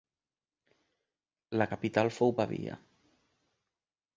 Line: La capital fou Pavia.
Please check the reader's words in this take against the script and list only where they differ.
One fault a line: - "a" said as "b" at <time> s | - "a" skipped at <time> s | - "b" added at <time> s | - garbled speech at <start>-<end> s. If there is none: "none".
none